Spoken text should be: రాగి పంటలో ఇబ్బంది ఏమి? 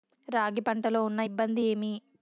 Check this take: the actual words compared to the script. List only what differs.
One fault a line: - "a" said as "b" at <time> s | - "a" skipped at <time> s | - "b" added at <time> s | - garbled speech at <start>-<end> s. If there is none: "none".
- "ఉన్న" added at 1.1 s